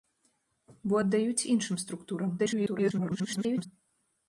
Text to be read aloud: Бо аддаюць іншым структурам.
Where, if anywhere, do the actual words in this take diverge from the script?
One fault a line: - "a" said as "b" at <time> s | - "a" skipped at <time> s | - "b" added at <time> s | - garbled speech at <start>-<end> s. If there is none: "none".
- garbled speech at 2.4-3.7 s